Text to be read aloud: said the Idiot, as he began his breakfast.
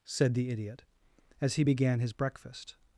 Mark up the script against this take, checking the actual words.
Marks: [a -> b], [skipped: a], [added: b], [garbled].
said the Idiot, as he began his breakfast.